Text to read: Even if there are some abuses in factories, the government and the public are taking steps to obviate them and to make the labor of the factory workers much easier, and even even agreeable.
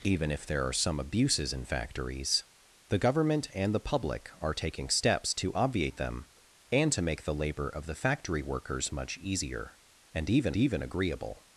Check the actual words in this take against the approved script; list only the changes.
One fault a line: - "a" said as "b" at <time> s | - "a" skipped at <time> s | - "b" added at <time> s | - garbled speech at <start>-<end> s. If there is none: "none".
none